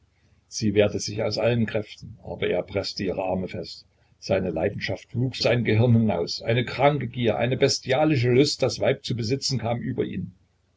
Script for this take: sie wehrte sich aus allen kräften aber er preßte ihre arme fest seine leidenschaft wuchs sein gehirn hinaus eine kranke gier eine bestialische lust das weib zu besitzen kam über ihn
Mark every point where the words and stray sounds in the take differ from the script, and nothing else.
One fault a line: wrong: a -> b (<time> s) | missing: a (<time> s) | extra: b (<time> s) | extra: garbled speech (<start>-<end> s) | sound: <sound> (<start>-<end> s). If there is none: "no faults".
no faults